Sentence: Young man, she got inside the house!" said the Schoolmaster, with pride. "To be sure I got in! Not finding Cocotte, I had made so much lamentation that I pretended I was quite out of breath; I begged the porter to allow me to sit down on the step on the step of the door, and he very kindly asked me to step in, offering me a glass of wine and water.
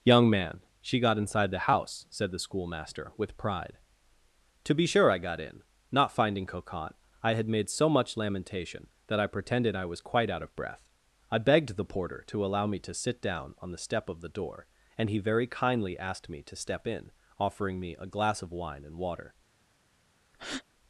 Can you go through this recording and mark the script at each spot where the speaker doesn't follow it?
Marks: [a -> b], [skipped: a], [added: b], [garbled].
Young man, she got inside the house!" said the Schoolmaster, with pride. "To be sure I got in! Not finding Cocotte, I had made so much lamentation that I pretended I was quite out of breath; I begged the porter to allow me to sit down on the step [skipped: on the step] of the door, and he very kindly asked me to step in, offering me a glass of wine and water.